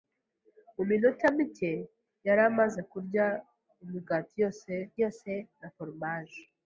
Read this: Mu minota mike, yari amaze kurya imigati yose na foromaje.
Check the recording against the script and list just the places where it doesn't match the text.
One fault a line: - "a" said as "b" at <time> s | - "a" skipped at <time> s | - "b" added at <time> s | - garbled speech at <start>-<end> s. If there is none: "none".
- "yose" added at 5.0 s